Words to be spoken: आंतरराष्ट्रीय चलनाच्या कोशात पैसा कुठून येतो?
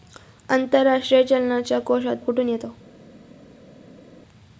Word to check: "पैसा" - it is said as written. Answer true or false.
false